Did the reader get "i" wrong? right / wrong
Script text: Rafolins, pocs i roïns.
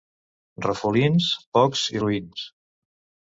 right